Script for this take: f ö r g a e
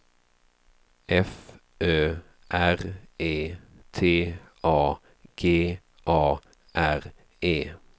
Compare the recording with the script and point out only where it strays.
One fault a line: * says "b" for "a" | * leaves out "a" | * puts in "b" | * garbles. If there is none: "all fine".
* puts in "e t a"
* puts in "r"